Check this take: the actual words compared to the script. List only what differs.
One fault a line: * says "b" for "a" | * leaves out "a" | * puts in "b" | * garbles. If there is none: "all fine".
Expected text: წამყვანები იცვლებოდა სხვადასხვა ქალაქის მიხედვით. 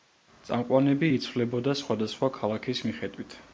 all fine